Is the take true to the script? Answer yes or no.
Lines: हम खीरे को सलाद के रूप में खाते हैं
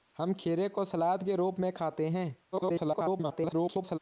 no